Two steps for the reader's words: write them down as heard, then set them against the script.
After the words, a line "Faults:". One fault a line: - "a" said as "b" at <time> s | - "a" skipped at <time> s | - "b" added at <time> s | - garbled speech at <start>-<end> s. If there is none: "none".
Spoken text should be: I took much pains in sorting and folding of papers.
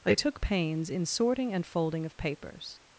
I took pains in sorting and folding of papers.
Faults:
- "much" skipped at 0.4 s